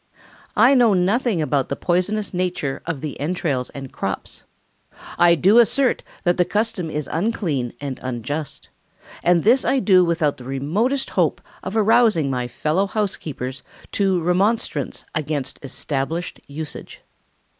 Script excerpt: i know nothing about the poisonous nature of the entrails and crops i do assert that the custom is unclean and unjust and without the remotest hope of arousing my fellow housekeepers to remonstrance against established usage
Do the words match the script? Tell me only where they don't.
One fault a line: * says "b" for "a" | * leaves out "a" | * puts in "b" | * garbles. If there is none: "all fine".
* puts in "this i do"